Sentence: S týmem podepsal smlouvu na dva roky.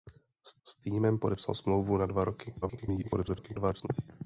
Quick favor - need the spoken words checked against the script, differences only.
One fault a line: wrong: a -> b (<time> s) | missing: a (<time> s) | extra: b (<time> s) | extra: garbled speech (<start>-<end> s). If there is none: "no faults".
extra: s (0.7 s)
extra: garbled speech (2.6-3.9 s)